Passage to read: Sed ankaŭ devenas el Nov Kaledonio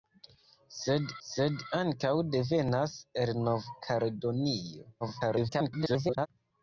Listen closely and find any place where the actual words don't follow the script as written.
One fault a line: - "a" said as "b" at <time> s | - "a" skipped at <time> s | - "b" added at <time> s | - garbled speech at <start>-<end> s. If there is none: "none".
- "sed" added at 1.3 s
- garbled speech at 5.0-6.3 s